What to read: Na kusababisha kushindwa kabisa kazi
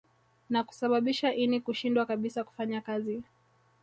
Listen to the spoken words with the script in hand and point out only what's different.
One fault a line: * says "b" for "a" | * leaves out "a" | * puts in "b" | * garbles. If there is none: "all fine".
* puts in "ini"
* puts in "kufanya"